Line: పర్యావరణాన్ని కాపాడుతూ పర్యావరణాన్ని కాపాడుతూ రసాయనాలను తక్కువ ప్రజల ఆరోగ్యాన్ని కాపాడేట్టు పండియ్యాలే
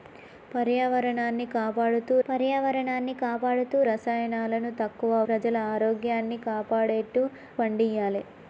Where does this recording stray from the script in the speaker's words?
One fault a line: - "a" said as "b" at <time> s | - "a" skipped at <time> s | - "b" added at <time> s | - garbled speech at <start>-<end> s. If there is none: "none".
none